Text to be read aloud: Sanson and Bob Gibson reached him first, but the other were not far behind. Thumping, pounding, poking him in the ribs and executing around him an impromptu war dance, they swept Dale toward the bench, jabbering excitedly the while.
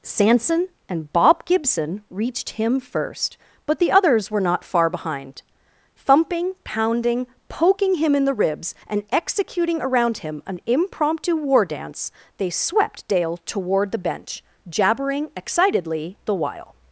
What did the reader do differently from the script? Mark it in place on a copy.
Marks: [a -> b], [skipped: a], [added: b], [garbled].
Sanson and Bob Gibson reached him first, but the [other -> others] were not far behind. Thumping, pounding, poking him in the ribs and executing around him an impromptu war dance, they swept Dale toward the bench, jabbering excitedly the while.